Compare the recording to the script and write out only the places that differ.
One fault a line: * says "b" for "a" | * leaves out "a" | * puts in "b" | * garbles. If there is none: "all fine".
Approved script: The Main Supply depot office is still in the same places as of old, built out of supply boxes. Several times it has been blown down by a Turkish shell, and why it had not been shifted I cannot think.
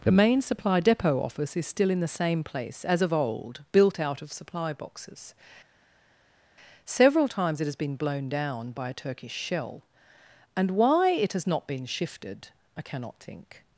* says "place" for "places"
* says "has" for "had"